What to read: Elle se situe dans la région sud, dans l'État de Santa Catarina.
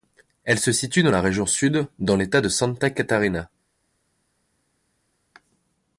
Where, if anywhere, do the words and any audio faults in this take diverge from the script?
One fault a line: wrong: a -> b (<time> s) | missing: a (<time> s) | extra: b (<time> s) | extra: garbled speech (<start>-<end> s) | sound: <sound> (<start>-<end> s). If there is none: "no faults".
no faults